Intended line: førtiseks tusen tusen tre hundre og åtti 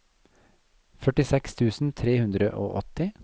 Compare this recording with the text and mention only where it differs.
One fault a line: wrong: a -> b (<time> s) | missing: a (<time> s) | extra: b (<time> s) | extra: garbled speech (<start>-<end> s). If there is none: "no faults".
missing: tusen (1.9 s)